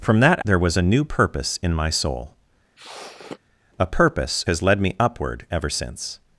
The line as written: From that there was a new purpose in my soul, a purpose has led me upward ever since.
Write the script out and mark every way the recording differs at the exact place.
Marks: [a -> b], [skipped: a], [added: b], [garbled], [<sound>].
From that there was a new purpose in my soul, [sniff] a purpose has led me upward ever since.